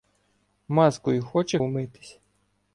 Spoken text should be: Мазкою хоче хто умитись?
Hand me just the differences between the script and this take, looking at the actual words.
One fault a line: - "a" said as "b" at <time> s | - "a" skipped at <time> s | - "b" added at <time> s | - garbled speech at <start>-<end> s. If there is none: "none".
- "хто" skipped at 1.6 s